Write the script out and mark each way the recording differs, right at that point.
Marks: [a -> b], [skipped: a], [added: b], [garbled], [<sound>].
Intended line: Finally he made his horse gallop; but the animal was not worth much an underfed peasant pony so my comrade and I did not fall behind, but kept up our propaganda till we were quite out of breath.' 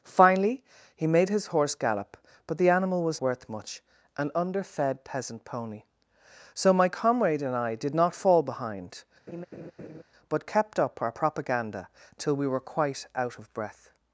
Finally he made his horse gallop; but the animal was [skipped: not] worth much an underfed peasant pony so my comrade and I did not fall behind, [laugh] but kept up our propaganda till we were quite out of breath.'